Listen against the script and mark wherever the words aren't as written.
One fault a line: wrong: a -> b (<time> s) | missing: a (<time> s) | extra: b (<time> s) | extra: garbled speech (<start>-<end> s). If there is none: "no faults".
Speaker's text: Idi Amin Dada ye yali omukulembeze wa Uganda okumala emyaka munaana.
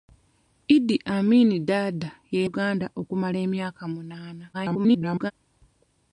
missing: yali omukulembeze wa (2.4 s)
extra: garbled speech (4.5-5.3 s)